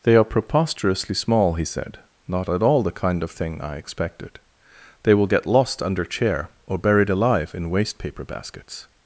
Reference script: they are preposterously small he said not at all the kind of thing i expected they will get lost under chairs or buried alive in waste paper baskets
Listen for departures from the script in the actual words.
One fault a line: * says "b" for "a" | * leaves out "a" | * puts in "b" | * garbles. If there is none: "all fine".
* says "chair" for "chairs"